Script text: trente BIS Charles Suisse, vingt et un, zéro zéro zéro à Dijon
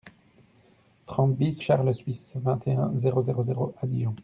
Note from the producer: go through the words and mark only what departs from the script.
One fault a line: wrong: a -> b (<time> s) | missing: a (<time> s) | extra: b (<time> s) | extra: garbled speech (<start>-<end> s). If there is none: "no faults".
no faults